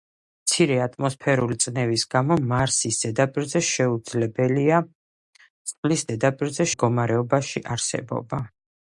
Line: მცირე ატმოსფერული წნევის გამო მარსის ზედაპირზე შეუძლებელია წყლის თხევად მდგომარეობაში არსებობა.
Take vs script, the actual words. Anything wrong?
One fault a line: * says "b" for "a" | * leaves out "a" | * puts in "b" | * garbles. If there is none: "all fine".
* says "ზედაპირზე" for "თხევად"